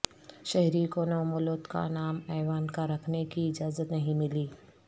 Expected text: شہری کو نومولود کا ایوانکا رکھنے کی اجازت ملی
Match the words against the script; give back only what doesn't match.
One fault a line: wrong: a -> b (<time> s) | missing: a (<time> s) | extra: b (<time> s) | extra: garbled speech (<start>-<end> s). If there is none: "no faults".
extra: نام (1.9 s)
extra: نہیں (3.9 s)